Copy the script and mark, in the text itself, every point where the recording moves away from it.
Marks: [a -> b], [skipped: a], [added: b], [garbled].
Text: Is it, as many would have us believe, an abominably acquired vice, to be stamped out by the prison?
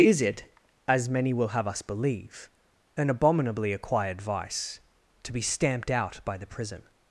Is it, as many [would -> will] have us believe, an abominably acquired vice, to be stamped out by the prison?